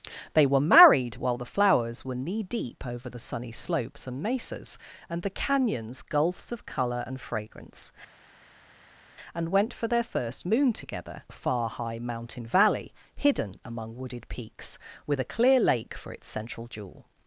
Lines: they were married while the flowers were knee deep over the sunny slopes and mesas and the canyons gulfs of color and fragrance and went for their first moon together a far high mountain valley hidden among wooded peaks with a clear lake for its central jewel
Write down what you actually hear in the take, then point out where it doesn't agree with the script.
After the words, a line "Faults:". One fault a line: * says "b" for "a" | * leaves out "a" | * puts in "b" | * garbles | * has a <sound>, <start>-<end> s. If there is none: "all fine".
they were married while the flowers were knee deep over the sunny slopes and mesas and the canyons gulfs of color and fragrance and went for their first moon together a far high mountain valley hidden among wooded peaks with a clear lake for its central jewel
Faults:
all fine